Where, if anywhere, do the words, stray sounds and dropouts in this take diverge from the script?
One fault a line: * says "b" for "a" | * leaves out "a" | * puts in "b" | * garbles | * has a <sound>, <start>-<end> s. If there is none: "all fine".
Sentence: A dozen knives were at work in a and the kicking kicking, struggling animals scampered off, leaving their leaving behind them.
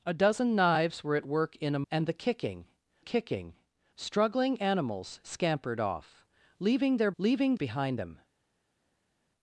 all fine